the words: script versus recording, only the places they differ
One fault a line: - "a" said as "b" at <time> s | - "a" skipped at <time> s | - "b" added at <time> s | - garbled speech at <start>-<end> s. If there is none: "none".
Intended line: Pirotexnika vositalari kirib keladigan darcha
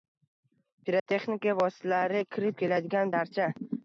none